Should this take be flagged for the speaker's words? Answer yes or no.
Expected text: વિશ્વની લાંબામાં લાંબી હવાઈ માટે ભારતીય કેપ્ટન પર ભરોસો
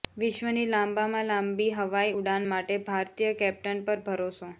yes